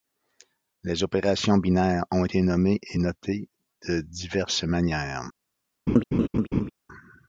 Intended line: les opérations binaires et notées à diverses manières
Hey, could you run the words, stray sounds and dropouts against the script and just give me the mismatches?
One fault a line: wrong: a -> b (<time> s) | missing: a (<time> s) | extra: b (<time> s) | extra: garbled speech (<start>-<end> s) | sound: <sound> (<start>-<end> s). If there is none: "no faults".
extra: ont été nommées (2.1 s)
wrong: à -> de (3.9 s)
sound: laugh (5.9-6.7 s)